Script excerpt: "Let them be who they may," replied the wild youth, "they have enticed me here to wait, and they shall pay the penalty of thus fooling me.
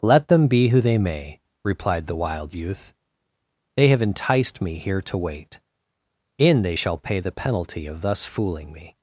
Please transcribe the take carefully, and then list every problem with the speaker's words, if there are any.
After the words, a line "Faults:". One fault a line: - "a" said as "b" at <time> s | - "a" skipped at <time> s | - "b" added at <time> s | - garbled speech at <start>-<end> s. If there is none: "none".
"Let them be who they may," replied the wild youth, "they have enticed me here to wait, in they shall pay the penalty of thus fooling me.
Faults:
- "and" said as "in" at 6.4 s